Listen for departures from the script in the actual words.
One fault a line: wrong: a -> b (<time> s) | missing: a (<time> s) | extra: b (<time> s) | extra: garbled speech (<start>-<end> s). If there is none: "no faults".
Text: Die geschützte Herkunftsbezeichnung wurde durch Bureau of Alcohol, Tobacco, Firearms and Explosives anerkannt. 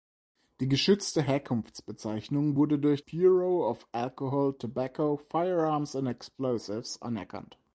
no faults